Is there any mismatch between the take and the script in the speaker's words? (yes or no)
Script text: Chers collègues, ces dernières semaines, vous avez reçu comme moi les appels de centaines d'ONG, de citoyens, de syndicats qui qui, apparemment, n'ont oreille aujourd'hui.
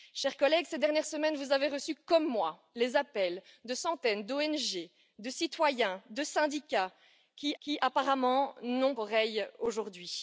no